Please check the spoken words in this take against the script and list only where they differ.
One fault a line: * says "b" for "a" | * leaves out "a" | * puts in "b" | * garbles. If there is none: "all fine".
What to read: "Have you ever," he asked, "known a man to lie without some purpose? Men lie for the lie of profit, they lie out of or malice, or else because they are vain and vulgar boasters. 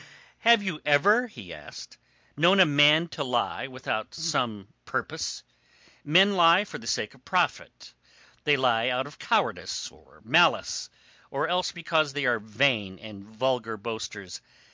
* says "sake" for "lie"
* puts in "cowardice"